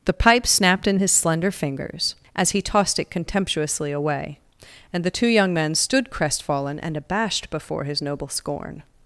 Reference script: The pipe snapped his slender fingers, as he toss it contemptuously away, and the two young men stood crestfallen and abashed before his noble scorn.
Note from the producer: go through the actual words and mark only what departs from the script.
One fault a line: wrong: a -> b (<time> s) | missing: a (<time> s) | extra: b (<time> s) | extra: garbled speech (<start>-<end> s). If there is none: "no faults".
extra: in (0.9 s)
wrong: toss -> tossed (2.6 s)